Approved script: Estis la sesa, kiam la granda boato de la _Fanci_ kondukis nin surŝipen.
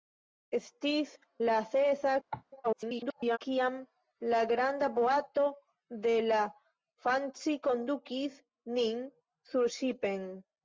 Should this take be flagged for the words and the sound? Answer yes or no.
yes